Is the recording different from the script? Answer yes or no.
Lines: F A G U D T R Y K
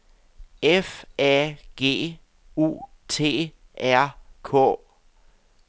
yes